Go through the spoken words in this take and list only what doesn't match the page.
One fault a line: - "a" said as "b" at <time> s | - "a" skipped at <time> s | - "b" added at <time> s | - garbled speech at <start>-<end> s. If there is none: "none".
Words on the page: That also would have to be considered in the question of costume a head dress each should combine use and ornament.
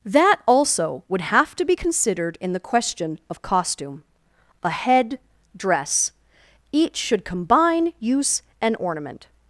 none